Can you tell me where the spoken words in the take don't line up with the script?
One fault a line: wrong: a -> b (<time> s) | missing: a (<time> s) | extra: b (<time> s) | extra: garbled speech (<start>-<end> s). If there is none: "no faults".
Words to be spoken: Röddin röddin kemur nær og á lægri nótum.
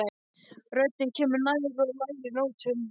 missing: röddin (1.1 s)